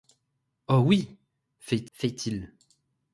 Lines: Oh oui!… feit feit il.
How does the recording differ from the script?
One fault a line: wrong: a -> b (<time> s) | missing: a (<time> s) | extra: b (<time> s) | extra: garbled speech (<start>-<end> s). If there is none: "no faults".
no faults